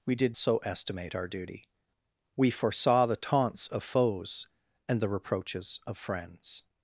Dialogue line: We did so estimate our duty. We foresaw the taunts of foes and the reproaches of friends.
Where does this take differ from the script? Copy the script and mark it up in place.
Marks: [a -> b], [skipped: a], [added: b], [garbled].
We did so estimate our duty. We foresaw the taunts of foes and the reproaches of friends.